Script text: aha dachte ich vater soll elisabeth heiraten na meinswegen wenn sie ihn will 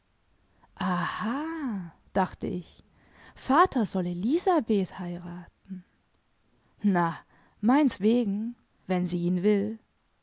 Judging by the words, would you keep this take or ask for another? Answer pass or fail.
pass